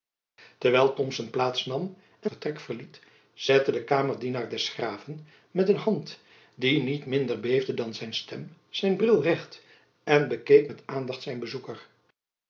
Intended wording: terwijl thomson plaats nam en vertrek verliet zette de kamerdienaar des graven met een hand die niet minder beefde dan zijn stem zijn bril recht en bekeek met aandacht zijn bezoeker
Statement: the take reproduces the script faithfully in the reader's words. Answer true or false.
true